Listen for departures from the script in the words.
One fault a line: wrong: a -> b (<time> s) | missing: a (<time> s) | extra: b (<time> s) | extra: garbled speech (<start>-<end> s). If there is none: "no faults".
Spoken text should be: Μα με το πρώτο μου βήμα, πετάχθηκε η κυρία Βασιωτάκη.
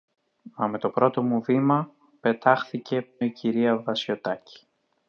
no faults